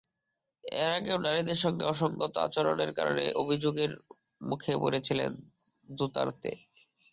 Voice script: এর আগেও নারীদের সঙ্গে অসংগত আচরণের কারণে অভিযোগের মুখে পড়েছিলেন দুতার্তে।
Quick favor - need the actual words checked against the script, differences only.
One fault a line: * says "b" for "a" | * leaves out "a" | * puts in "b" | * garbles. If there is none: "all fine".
all fine